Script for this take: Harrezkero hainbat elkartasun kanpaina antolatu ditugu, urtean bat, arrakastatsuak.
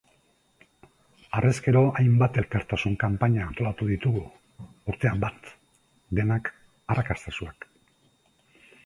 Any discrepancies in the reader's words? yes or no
yes